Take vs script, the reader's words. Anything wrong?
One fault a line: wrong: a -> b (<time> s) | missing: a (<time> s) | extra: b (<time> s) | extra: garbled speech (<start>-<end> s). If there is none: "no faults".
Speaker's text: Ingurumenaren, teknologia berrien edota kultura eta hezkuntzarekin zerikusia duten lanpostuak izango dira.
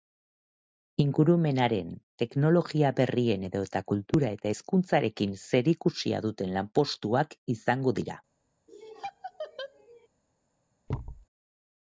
no faults